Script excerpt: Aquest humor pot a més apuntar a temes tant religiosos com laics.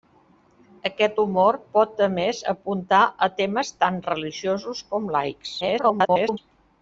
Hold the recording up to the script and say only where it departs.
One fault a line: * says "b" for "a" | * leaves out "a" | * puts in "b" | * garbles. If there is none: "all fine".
* garbles